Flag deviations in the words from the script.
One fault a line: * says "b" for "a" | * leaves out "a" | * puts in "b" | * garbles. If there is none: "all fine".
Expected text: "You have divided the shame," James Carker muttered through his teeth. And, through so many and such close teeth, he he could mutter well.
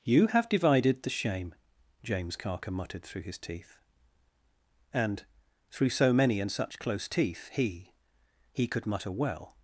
all fine